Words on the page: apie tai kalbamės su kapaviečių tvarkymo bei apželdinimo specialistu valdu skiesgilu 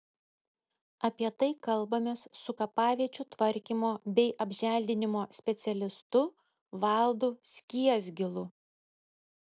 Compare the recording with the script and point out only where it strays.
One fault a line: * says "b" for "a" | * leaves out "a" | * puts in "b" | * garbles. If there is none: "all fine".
all fine